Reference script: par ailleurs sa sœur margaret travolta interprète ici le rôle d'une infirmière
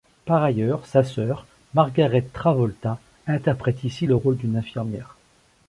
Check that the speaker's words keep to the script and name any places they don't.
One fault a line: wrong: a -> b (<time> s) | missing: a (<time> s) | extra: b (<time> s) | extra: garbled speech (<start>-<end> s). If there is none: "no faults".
no faults